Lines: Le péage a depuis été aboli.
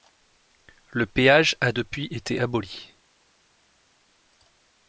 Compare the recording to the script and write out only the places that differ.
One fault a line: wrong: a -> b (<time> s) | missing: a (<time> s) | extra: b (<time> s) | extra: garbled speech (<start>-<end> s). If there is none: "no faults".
no faults